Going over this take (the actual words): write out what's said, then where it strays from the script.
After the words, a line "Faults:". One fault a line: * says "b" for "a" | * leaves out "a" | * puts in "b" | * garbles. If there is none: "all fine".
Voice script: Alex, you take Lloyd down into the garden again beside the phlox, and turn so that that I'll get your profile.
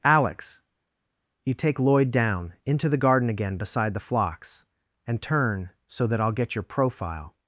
Alex, you take Lloyd down into the garden again beside the phlox, and turn so that I'll get your profile.
Faults:
* leaves out "that"